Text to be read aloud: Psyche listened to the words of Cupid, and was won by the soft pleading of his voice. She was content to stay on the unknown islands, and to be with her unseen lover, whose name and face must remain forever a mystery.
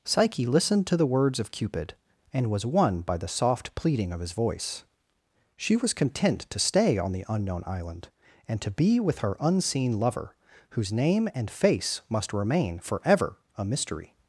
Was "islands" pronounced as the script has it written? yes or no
no